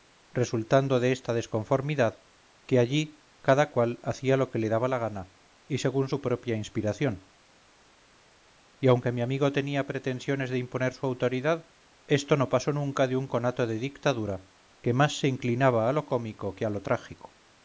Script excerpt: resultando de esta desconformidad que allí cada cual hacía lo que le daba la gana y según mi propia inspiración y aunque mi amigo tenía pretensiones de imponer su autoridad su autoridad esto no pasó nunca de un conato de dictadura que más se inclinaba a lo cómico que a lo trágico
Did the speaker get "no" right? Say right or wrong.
right